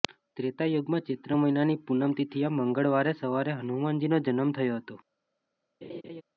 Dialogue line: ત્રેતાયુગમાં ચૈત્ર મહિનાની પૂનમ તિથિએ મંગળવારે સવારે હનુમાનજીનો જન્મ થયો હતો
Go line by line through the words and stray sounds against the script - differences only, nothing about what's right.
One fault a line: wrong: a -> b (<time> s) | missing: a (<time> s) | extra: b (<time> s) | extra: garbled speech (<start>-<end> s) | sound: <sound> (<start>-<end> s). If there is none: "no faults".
sound: laugh (5.8-6.2 s)